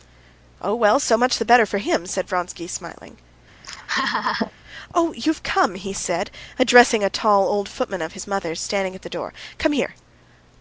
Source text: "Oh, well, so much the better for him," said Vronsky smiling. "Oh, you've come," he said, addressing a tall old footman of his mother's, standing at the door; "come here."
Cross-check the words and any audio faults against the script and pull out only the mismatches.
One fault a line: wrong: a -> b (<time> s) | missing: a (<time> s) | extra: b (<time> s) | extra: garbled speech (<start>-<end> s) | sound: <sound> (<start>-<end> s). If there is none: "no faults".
sound: laugh (3.6-4.5 s)